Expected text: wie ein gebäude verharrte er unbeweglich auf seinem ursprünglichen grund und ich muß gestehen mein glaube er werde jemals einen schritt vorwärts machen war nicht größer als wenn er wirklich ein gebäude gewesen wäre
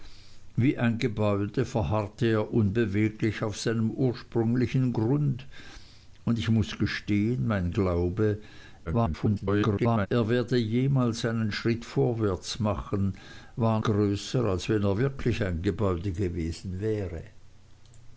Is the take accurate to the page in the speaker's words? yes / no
no